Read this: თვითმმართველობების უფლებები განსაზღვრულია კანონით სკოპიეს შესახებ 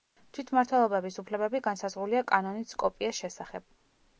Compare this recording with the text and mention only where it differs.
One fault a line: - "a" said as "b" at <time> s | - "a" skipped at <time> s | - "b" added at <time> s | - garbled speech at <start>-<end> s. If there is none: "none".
none